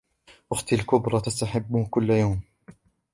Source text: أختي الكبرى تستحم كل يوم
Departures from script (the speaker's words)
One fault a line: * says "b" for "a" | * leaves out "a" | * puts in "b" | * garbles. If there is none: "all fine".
all fine